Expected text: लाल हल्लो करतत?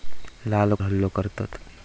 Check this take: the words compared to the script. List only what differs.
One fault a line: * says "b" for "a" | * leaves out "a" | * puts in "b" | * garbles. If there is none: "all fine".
all fine